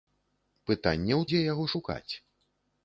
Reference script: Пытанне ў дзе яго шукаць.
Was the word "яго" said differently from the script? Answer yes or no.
no